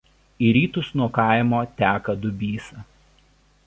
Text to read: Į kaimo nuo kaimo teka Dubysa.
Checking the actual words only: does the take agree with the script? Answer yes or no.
no